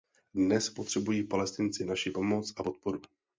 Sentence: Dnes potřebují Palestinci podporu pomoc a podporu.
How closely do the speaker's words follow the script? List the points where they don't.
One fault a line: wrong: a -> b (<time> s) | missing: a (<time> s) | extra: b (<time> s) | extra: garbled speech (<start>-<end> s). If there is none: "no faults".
wrong: podporu -> naši (1.9 s)